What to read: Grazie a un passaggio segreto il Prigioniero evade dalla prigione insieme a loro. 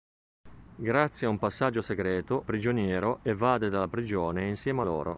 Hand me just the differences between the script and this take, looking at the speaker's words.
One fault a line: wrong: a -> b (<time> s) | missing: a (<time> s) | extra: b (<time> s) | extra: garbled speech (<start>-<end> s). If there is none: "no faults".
missing: il (2.5 s)